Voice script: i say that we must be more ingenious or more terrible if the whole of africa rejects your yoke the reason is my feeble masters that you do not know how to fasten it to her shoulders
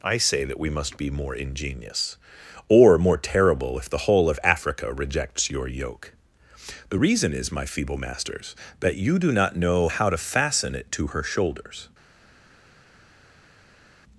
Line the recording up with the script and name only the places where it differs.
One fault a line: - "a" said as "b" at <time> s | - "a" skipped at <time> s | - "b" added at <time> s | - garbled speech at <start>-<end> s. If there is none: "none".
none